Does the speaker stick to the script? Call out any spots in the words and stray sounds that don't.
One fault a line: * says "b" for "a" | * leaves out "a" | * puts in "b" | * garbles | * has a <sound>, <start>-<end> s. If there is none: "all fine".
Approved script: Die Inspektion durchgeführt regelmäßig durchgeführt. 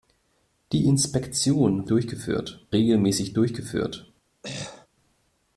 * has a throat clearing, 4.4-4.9 s